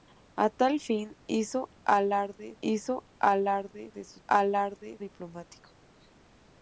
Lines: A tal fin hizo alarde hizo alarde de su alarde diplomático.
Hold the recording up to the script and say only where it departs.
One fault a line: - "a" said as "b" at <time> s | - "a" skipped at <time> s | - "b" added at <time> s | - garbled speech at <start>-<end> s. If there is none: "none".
none